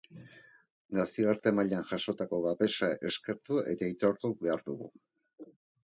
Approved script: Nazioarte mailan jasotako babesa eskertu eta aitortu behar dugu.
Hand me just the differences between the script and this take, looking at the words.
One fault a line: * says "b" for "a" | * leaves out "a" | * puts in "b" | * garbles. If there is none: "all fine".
all fine